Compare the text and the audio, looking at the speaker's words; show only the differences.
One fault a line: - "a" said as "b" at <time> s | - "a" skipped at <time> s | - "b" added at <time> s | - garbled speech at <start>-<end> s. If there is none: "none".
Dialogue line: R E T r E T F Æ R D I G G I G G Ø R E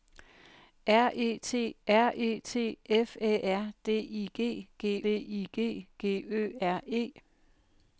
none